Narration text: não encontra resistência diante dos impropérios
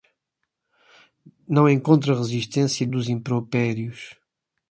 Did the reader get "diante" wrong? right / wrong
wrong